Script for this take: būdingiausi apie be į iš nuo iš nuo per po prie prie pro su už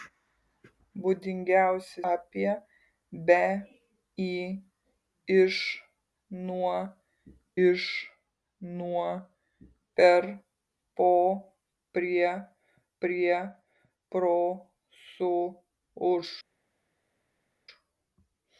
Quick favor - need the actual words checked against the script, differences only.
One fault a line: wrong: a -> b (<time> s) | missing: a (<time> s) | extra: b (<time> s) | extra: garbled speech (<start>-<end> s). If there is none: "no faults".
no faults